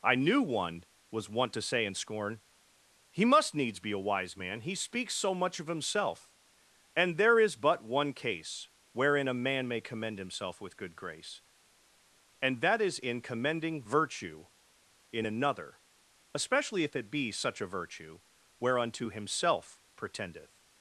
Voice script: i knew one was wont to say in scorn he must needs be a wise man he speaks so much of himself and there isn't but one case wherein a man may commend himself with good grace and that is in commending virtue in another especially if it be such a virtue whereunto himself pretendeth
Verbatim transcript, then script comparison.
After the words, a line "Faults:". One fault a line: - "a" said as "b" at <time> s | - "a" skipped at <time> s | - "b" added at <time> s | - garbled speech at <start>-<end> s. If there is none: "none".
i knew one was wont to say in scorn he must needs be a wise man he speaks so much of himself and there is but one case wherein a man may commend himself with good grace and that is in commending virtue in another especially if it be such a virtue whereunto himself pretendeth
Faults:
- "isn't" said as "is" at 7.4 s